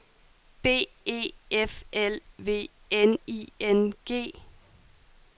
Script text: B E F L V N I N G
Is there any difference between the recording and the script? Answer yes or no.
no